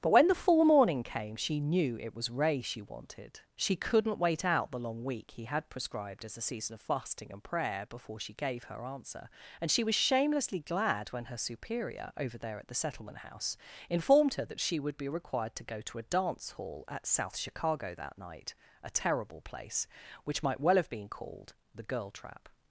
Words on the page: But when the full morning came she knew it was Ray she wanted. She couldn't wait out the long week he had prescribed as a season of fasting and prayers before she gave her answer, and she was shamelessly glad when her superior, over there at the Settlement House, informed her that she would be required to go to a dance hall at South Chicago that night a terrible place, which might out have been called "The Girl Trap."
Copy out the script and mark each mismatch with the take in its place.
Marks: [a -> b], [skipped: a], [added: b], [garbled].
But when the full morning came she knew it was Ray she wanted. She couldn't wait out the long week he had prescribed as a season of fasting and [prayers -> prayer] before she gave her answer, and she was shamelessly glad when her superior, over there at the Settlement House, informed her that she would be required to go to a dance hall at South Chicago that night a terrible place, which might [out -> well] have been called "The Girl Trap."